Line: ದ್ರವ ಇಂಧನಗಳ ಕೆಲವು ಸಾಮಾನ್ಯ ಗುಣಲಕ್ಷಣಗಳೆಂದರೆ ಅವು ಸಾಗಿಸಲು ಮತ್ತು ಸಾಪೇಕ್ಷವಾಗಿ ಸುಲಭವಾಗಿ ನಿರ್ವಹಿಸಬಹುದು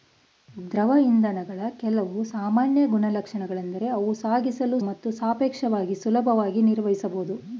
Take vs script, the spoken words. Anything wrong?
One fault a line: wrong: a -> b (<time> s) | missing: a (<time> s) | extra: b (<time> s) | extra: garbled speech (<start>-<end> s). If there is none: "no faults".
no faults